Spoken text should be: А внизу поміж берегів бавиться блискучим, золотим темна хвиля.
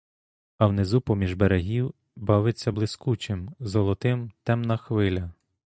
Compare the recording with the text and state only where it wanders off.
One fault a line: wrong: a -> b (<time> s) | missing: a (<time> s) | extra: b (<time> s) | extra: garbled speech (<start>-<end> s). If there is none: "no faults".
no faults